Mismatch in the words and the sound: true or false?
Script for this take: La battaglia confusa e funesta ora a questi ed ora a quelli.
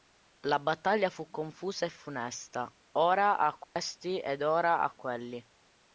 true